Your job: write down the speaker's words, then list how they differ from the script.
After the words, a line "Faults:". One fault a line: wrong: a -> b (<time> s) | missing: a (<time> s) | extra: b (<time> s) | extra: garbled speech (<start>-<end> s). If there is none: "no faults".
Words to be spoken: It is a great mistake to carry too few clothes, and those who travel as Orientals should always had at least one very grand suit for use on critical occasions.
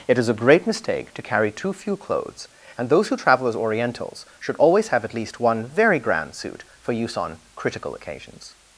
It is a great mistake to carry too few clothes, and those who travel as Orientals should always have at least one very grand suit for use on critical occasions.
Faults:
wrong: had -> have (4.9 s)